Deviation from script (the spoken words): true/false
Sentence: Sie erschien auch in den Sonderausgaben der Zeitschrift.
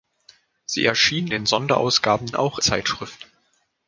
true